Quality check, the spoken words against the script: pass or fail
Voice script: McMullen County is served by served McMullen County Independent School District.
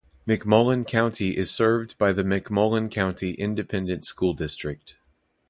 fail